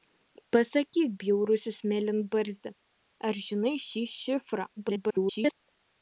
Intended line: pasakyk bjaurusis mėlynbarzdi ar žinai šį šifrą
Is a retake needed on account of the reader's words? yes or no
yes